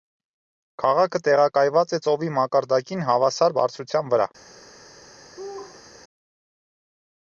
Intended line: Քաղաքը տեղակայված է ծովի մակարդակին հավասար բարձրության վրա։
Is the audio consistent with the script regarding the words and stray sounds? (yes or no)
no